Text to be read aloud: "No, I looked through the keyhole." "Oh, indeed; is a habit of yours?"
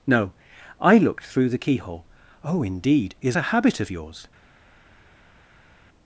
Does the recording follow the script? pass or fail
pass